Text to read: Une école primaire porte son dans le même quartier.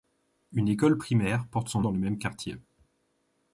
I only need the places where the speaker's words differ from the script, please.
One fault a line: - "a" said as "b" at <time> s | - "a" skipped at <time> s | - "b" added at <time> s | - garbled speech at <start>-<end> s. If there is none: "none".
none